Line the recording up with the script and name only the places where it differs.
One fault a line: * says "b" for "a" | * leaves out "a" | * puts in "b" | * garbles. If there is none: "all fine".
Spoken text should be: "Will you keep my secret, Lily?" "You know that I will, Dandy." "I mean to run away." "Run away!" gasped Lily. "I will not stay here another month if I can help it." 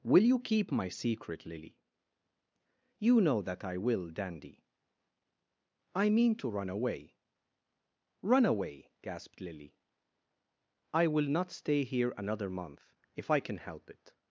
all fine